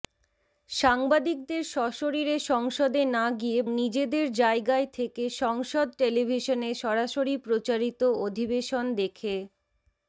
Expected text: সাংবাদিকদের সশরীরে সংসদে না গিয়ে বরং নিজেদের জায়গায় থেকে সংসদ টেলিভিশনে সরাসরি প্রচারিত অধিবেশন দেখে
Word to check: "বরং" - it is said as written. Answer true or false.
false